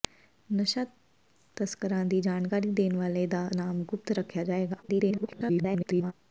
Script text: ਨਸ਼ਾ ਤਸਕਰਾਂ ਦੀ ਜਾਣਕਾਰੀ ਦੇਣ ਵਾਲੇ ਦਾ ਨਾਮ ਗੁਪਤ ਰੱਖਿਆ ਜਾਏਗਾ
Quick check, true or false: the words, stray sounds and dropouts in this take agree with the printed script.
false